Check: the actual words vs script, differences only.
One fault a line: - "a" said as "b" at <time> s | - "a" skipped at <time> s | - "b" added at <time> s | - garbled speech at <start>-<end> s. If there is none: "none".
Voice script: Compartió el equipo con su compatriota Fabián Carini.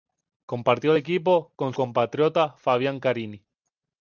- "su" skipped at 1.7 s